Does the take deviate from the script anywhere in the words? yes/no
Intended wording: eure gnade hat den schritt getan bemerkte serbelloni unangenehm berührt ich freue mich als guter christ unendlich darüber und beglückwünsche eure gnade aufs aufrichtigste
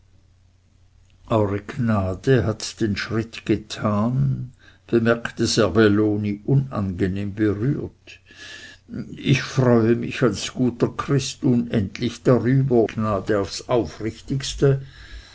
yes